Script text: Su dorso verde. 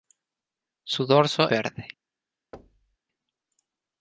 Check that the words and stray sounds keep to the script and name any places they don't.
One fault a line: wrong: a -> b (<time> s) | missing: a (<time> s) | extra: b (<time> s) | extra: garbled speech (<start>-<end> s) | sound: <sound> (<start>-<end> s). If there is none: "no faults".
sound: thud (2.5-3.0 s)